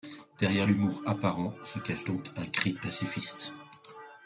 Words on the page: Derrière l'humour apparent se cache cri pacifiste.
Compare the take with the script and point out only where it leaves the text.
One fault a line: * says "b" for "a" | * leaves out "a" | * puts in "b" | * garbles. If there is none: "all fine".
* puts in "donc un"